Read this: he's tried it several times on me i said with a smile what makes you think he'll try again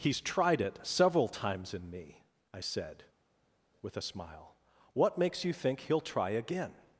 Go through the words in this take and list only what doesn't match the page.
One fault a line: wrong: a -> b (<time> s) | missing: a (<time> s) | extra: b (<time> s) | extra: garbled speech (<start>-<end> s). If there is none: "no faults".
wrong: on -> in (1.8 s)